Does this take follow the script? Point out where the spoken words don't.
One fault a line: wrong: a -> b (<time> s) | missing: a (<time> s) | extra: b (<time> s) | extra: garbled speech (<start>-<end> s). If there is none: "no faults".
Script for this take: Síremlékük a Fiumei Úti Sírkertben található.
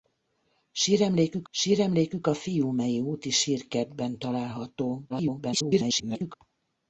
extra: síremlékük (1.5 s)
extra: garbled speech (5.1-6.3 s)